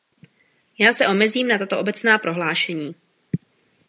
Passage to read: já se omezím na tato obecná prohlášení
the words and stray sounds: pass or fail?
pass